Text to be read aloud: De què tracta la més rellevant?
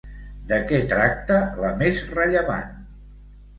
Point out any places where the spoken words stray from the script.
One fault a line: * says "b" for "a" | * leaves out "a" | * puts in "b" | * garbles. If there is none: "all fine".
all fine